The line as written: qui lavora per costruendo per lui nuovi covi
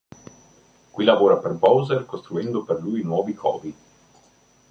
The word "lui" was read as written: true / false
true